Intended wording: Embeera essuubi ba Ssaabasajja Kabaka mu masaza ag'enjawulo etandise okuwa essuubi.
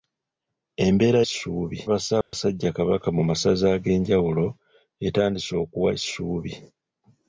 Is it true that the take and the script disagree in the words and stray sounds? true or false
true